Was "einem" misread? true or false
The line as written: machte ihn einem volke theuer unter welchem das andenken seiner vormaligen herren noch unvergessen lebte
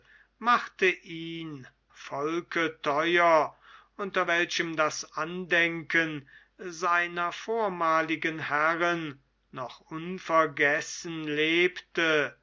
true